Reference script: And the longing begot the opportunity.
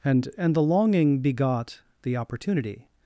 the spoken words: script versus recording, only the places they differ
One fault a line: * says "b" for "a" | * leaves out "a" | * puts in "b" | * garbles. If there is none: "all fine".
* puts in "and"